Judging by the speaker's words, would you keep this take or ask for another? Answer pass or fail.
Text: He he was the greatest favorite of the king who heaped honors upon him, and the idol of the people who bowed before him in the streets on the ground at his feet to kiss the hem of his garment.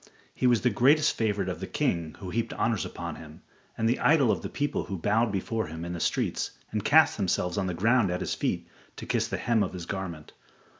fail